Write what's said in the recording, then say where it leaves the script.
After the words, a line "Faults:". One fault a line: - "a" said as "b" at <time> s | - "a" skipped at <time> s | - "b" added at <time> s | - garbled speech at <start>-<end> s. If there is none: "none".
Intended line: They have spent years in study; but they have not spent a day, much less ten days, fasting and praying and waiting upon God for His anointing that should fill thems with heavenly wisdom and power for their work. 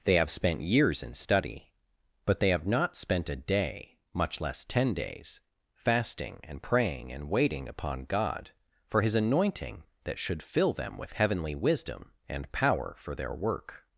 They have spent years in study; but they have not spent a day, much less ten days, fasting and praying and waiting upon God for His anointing that should fill them with heavenly wisdom and power for their work.
Faults:
- "thems" said as "them" at 10.7 s